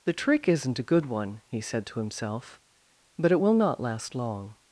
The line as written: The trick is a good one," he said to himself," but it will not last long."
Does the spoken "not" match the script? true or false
true